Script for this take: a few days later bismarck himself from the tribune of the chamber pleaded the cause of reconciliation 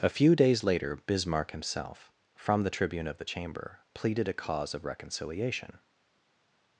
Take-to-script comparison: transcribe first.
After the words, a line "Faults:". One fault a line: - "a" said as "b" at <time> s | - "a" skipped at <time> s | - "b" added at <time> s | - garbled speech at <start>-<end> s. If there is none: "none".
a few days later bismarck himself from the tribune of the chamber pleaded a cause of reconciliation
Faults:
- "the" said as "a" at 4.3 s